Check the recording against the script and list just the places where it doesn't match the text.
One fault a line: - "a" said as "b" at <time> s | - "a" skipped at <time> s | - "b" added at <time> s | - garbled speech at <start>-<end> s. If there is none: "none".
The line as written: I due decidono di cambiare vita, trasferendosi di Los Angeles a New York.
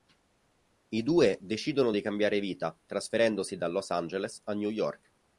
- "di" said as "da" at 3.6 s